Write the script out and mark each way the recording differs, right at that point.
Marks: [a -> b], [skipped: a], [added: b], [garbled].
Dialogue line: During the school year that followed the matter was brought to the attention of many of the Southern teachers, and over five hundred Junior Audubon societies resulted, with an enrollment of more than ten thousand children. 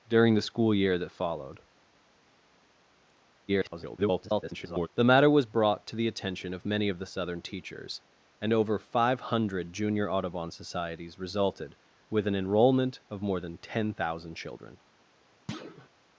During the school year that followed [garbled] the matter was brought to the attention of many of the Southern teachers, and over five hundred Junior Audubon societies resulted, with an enrollment of more than ten thousand children.